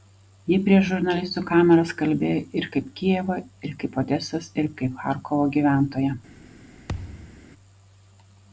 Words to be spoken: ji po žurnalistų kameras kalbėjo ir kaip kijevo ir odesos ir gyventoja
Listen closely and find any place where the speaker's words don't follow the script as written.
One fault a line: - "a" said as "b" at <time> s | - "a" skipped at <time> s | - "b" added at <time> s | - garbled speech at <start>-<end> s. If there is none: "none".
- "po" said as "prieš" at 0.7 s
- "kaip" added at 3.8 s
- "kaip charkovo" added at 4.8 s